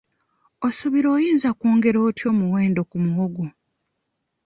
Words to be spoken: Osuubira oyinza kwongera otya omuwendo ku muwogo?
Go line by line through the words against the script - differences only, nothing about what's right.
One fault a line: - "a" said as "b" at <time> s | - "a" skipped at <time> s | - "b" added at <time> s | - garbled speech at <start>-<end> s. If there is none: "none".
none